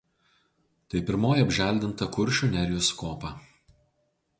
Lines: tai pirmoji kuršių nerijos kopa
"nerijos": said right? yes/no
yes